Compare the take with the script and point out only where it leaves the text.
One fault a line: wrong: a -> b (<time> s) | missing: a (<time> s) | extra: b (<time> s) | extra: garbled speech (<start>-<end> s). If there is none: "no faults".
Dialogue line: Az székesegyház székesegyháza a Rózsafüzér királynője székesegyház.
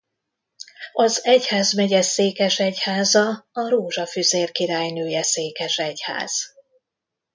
wrong: székesegyház -> egyházmegye (1.2 s)